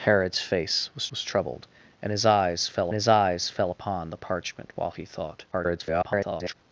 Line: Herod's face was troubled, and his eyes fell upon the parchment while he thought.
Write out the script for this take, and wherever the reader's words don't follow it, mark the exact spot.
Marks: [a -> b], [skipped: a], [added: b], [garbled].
Herod's face was [added: was] troubled, and his eyes fell [added: his eyes fell] upon the parchment while he thought. [garbled]